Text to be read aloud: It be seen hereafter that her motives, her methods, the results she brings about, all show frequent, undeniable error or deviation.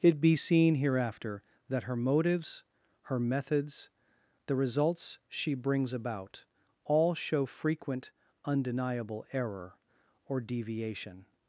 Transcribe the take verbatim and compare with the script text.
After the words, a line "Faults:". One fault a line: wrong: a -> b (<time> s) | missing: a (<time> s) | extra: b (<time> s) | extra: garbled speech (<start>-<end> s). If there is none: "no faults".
It be seen hereafter that her motives, her methods, the results she brings about, all show frequent, undeniable error or deviation.
Faults:
no faults